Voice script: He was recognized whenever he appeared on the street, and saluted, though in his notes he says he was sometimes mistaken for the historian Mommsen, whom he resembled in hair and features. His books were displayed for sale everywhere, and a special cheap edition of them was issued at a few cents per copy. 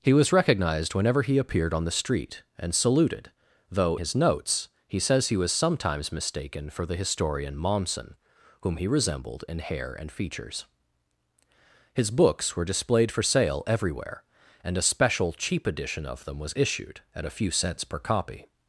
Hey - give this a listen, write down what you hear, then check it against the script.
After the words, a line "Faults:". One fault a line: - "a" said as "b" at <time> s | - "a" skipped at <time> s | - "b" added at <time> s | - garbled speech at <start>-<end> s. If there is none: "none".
He was recognized whenever he appeared on the street, and saluted, though his notes he says he was sometimes mistaken for the historian Mommsen, whom he resembled in hair and features. His books were displayed for sale everywhere, and a special cheap edition of them was issued at a few cents per copy.
Faults:
- "in" skipped at 4.0 s